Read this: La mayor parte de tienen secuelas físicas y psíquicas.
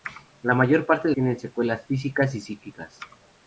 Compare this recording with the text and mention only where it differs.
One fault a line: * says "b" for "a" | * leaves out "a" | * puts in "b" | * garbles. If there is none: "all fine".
all fine